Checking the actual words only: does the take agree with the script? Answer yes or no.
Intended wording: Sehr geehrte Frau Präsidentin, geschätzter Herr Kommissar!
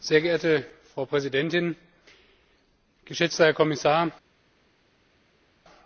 yes